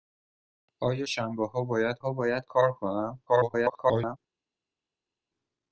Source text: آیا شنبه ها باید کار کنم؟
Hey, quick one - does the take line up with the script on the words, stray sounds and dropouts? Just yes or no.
no